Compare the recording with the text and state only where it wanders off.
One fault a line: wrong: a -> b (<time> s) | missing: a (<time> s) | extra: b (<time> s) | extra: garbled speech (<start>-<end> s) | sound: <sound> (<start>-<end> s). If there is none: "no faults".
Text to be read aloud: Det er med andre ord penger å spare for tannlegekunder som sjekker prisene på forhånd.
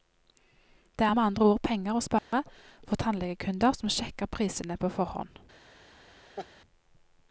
sound: dropout (2.2-2.3 s)
sound: laugh (6.4-6.5 s)